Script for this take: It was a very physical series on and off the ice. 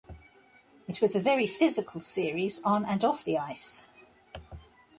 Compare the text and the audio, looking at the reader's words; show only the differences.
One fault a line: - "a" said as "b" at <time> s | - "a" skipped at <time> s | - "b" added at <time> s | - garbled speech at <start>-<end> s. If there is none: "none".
none